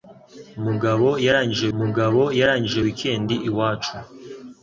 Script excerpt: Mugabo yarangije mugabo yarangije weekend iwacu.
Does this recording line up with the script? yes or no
yes